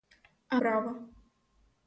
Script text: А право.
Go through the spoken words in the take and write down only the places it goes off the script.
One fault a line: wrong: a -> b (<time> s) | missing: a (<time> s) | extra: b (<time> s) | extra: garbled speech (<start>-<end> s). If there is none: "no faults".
no faults